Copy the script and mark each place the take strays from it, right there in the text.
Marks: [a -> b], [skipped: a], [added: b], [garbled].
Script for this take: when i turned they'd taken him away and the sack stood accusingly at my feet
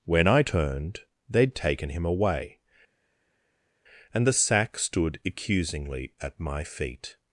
when i turned they'd taken him away and the sack stood accusingly at my feet